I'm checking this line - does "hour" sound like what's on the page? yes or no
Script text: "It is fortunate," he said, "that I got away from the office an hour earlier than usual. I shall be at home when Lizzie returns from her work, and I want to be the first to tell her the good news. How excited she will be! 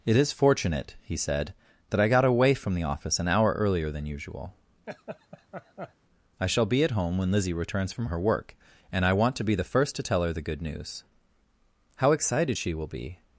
yes